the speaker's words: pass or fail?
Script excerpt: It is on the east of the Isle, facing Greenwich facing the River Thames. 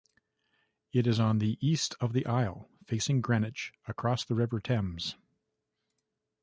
fail